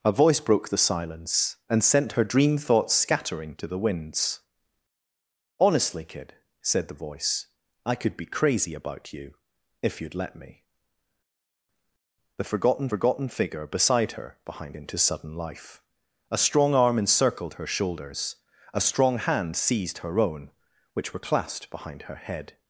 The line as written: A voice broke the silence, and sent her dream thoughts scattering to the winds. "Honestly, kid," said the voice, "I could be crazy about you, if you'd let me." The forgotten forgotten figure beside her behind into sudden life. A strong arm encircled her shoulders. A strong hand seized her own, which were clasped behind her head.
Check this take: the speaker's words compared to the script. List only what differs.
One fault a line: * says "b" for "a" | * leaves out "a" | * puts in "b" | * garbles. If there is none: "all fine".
all fine